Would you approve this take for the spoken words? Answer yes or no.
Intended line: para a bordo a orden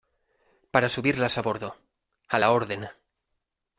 no